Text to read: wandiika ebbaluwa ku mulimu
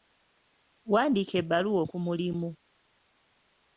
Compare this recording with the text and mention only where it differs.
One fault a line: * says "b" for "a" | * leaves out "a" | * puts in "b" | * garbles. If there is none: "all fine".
all fine